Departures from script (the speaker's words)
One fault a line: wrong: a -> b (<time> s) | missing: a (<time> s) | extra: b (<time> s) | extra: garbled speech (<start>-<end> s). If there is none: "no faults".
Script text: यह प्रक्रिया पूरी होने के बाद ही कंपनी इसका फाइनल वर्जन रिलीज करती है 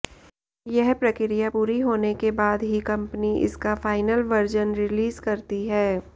no faults